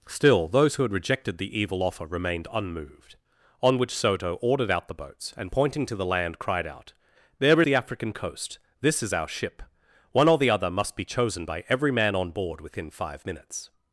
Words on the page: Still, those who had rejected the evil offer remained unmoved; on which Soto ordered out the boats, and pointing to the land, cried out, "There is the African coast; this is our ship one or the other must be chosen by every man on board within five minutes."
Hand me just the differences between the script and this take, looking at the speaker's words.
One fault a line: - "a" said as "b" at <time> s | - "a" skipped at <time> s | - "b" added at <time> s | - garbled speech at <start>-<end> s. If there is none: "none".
- "is" skipped at 7.6 s